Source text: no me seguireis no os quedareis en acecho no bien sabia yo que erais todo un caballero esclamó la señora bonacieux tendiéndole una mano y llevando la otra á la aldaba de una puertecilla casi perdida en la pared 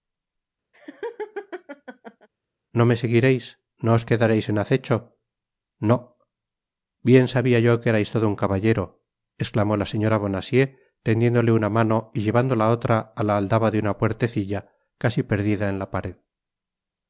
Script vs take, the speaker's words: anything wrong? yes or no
no